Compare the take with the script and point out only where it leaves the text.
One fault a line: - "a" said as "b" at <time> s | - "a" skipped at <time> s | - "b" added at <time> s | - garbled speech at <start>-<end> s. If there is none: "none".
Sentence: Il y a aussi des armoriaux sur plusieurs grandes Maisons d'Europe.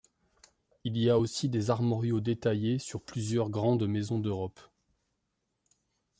- "détaillés" added at 2.2 s